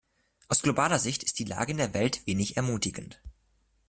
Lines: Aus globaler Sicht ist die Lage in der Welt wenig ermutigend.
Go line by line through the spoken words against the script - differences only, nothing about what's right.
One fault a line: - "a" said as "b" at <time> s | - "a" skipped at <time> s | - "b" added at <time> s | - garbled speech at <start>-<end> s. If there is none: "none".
none